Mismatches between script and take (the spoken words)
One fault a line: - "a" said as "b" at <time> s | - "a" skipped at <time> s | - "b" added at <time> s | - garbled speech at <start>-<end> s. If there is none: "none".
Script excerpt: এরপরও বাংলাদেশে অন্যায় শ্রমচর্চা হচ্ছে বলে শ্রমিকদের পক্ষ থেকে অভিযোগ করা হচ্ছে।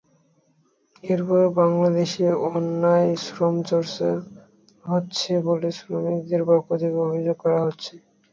none